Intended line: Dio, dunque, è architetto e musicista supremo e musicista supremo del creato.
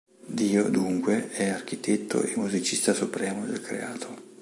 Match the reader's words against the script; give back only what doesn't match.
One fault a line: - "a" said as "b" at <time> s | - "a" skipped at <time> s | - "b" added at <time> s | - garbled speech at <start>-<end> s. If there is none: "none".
- "e musicista supremo" skipped at 3.5 s